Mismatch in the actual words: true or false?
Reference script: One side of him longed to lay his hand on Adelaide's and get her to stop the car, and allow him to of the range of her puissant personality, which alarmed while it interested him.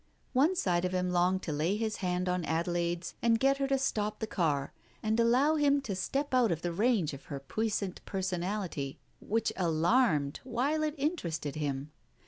true